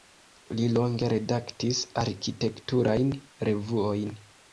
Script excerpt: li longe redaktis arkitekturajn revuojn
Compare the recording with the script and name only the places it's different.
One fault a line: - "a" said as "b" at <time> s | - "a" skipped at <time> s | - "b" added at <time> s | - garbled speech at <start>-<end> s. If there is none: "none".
none